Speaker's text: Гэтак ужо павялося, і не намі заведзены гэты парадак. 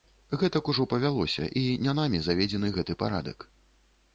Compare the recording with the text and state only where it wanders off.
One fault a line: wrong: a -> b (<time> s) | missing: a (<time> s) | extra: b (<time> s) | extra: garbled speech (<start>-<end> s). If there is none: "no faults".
no faults